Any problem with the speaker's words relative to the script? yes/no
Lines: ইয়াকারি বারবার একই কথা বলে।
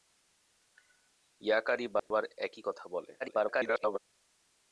yes